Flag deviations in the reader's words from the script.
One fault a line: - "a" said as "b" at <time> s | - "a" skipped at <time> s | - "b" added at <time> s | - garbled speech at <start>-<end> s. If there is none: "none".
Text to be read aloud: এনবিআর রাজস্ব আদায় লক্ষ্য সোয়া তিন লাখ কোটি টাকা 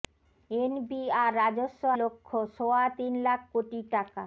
- "আদায়" skipped at 1.8 s